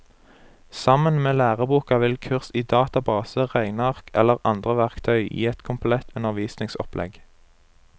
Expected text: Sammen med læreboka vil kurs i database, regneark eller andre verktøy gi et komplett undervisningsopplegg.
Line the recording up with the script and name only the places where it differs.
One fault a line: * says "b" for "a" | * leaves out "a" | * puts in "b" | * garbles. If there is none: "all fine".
all fine